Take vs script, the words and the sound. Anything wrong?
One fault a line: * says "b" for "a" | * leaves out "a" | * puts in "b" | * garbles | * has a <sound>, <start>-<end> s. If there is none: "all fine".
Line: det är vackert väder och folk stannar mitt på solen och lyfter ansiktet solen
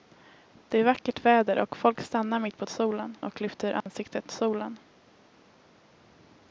* has a dropout, 3.8-3.9 s